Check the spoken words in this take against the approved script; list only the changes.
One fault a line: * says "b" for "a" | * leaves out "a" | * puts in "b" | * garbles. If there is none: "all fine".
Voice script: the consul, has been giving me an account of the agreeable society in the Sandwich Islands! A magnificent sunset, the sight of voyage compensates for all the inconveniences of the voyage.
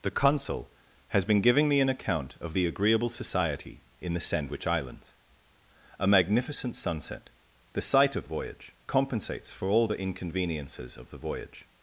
all fine